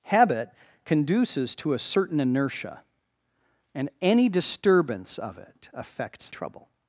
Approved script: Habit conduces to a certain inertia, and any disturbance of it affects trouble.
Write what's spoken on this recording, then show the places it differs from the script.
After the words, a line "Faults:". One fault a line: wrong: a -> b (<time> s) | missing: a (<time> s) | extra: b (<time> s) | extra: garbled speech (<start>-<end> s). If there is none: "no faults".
Habit conduces to a certain inertia, and any disturbance of it affects trouble.
Faults:
no faults